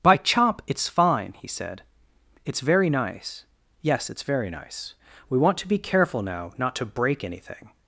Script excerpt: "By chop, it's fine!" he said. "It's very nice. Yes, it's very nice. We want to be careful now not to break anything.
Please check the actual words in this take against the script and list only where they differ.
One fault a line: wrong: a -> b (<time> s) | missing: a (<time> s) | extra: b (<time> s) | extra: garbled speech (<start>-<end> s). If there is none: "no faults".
no faults